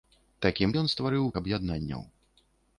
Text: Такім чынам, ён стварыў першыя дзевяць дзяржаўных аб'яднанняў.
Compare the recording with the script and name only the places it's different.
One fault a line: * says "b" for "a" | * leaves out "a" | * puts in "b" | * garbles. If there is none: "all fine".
* leaves out "чынам"
* leaves out "першыя дзевяць дзяржаўных"